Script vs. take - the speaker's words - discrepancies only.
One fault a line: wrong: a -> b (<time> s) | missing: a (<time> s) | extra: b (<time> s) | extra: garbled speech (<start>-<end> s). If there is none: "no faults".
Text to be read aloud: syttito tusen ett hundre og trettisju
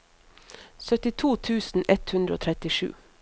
no faults